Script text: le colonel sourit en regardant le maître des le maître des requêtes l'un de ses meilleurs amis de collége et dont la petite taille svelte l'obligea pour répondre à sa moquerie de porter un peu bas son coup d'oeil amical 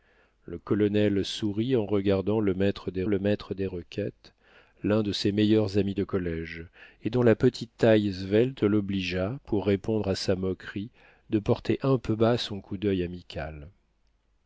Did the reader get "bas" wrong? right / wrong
right